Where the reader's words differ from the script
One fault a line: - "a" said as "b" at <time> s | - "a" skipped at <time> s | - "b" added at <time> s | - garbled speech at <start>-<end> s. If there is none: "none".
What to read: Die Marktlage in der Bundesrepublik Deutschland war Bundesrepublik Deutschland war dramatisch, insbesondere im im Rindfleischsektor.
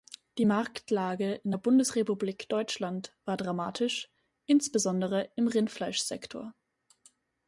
- "Bundesrepublik Deutschland war" skipped at 3.4 s
- "im" skipped at 5.5 s